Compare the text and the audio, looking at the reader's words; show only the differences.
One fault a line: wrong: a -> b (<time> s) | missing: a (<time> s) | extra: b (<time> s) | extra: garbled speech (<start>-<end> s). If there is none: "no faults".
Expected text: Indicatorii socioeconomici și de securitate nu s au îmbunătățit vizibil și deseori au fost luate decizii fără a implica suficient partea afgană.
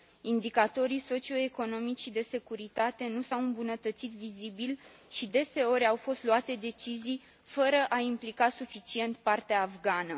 no faults